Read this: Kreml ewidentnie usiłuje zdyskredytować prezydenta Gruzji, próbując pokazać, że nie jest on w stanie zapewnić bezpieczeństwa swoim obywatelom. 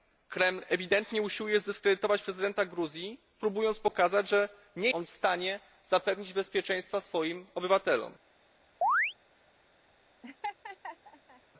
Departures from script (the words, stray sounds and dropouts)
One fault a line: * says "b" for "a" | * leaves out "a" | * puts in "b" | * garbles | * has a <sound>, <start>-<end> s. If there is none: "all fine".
* leaves out "jest"
* has a chirp, 8.8-9.1 s
* has a laugh, 10.2-11.4 s